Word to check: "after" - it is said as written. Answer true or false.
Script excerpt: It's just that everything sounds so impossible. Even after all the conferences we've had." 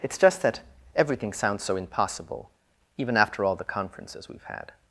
true